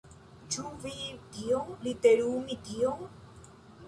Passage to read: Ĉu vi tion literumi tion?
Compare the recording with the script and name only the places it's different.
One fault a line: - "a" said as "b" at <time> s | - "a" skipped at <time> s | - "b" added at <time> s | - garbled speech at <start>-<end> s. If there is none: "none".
none